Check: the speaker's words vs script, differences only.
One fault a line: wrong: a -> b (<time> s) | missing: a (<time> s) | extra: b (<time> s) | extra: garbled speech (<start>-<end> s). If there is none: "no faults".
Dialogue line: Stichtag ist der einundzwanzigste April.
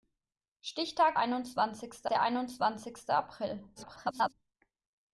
wrong: ist -> einundzwanzigste (1.2 s)
extra: garbled speech (3.8-4.3 s)